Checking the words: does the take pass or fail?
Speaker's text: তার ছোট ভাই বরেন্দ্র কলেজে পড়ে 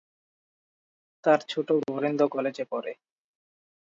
fail